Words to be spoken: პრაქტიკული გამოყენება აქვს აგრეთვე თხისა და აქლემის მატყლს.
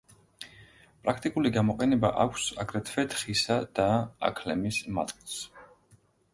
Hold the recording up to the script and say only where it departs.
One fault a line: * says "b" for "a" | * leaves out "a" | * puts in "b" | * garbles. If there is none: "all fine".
all fine